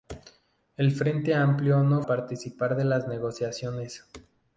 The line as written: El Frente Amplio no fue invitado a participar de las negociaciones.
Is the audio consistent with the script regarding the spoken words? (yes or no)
no